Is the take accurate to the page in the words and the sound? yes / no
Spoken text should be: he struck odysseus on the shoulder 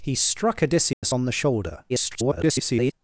no